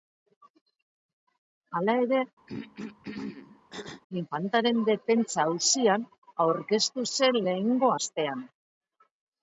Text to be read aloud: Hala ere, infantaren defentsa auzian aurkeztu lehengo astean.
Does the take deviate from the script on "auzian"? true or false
false